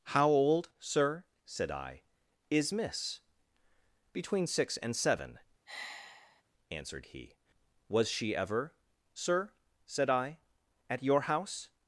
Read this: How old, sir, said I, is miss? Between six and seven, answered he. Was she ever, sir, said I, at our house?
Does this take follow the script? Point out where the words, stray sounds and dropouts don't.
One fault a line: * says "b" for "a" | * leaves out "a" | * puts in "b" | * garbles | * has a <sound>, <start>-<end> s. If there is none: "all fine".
* has a sigh, 5.7-6.4 s
* says "your" for "our"